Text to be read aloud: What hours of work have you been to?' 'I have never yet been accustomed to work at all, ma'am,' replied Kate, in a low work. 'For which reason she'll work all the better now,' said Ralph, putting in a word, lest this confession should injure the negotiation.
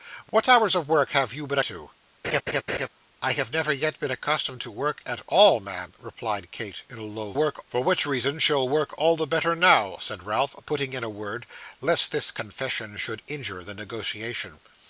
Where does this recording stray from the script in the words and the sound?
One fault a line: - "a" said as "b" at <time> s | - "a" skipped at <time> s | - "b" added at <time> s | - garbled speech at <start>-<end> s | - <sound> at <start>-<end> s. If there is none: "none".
- laugh at 2.2-2.9 s